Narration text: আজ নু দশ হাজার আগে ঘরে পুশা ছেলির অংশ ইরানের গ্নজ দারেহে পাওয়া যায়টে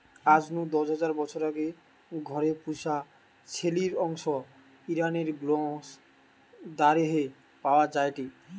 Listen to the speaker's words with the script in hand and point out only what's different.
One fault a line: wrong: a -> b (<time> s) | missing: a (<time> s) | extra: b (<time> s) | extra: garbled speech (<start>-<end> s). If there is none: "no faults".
extra: বছর (1.1 s)